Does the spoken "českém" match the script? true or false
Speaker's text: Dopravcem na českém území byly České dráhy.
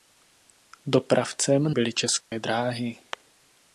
false